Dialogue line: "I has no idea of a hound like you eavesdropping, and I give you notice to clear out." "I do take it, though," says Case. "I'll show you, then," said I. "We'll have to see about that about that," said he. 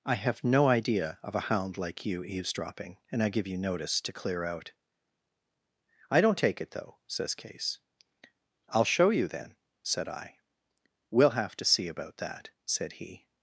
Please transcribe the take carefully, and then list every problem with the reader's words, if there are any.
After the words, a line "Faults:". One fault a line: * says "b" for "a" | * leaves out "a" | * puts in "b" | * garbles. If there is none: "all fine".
"I have no idea of a hound like you eavesdropping, and I give you notice to clear out." "I don't take it, though," says Case. "I'll show you, then," said I. "We'll have to see about that," said he.
Faults:
* says "have" for "has"
* says "don't" for "do"
* leaves out "about that"